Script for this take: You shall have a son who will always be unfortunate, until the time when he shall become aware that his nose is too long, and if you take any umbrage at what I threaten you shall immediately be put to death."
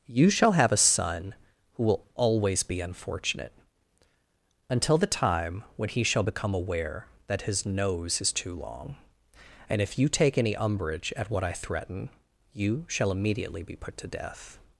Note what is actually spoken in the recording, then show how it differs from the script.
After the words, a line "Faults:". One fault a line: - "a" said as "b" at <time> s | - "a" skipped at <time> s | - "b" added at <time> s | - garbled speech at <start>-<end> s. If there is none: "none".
You shall have a son who will always be unfortunate, until the time when he shall become aware that his nose is too long, and if you take any umbrage at what I threaten you shall immediately be put to death."
Faults:
none